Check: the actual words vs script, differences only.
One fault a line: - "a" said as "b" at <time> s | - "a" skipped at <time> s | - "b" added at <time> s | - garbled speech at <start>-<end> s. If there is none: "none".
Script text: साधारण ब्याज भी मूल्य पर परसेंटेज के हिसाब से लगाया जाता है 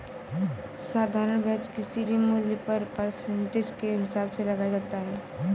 - "किसी" added at 1.8 s